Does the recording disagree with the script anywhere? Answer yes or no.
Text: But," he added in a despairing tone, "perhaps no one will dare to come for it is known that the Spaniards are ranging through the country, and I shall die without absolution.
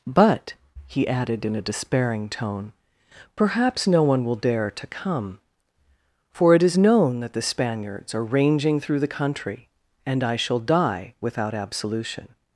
no